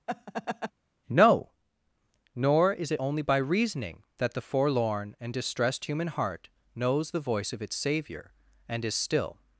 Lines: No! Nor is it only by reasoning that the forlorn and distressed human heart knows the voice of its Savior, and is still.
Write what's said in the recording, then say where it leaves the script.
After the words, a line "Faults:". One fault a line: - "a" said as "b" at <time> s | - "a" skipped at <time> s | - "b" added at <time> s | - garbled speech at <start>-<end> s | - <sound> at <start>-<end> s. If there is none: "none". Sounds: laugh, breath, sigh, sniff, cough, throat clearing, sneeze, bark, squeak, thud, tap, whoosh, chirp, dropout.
No! Nor is it only by reasoning that the forlorn and distressed human heart knows the voice of its Savior, and is still.
Faults:
- laugh at 0.1-0.7 s